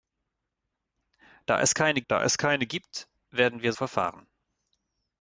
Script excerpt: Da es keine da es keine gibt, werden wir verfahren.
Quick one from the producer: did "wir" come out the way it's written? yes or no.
yes